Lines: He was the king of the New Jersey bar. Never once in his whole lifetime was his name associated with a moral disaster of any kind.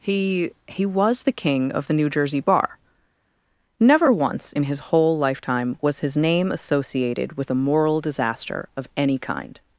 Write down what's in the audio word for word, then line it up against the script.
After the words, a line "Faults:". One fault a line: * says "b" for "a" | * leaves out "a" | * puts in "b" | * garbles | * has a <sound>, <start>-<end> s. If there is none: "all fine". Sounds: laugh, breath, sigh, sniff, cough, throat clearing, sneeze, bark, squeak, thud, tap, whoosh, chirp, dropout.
He he was the king of the New Jersey bar. Never once in his whole lifetime was his name associated with a moral disaster of any kind.
Faults:
* puts in "he"